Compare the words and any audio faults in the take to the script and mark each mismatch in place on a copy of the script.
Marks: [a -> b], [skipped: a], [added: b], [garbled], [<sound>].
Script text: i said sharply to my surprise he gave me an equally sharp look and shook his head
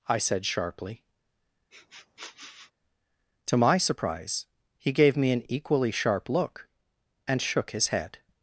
i said sharply [sniff] to my surprise he gave me an equally sharp look and shook his head